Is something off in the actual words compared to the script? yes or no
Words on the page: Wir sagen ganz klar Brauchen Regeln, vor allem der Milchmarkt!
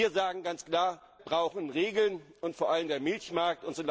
no